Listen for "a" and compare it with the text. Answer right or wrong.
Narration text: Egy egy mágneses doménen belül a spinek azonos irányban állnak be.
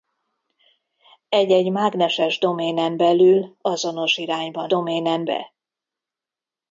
wrong